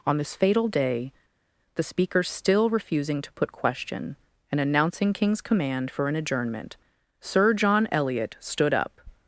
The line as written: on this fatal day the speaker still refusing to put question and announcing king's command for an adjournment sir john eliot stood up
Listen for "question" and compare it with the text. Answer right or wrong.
right